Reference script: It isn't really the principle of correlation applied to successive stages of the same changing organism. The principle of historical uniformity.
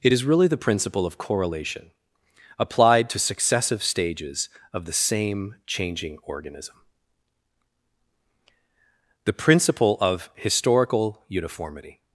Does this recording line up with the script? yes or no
no